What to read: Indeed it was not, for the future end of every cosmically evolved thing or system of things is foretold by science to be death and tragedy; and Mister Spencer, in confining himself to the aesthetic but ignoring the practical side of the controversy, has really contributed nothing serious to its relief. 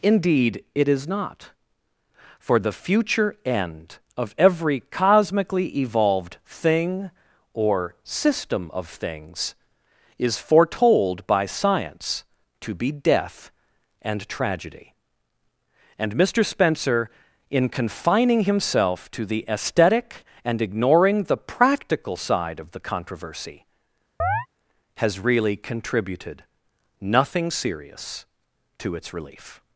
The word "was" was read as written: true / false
false